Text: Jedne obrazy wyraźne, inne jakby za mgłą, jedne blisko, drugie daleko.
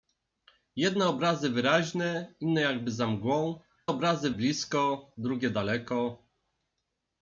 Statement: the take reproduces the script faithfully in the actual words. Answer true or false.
false